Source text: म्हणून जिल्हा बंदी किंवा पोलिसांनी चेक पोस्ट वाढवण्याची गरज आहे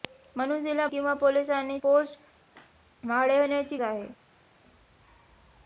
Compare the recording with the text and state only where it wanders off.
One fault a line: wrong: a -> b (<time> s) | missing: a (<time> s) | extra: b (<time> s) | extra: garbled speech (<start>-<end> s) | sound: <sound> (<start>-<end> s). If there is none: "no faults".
missing: बंदी (0.8 s)
missing: चेक (1.8 s)
missing: गरज (3.8 s)